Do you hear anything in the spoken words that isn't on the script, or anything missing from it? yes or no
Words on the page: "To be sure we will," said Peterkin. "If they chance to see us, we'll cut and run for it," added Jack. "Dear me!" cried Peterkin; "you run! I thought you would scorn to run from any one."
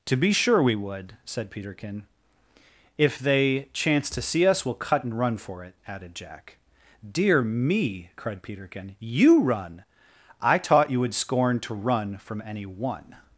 yes